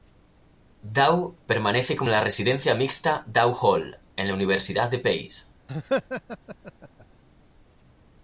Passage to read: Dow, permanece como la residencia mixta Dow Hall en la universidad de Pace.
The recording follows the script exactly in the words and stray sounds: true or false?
false